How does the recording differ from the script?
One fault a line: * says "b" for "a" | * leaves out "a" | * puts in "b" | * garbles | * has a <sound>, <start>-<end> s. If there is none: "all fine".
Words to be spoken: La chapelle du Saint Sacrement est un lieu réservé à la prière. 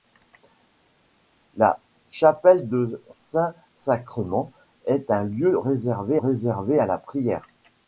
* puts in "réservé"